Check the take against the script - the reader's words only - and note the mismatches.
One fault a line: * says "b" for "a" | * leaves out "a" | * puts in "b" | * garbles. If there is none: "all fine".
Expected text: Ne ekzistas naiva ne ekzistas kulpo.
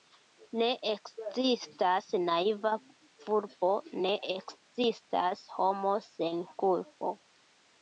* puts in "vulpo"
* puts in "homo sen"